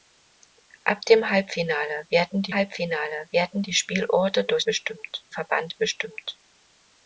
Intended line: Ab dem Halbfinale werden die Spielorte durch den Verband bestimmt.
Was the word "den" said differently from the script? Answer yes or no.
yes